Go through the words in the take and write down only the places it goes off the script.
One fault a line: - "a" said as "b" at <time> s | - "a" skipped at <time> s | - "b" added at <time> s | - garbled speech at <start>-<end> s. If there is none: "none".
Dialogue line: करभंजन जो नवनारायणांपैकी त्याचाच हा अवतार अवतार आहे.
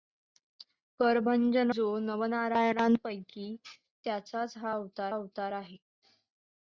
none